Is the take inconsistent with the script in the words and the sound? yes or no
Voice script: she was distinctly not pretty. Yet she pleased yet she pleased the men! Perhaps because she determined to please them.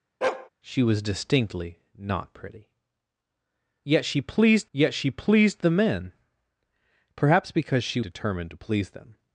yes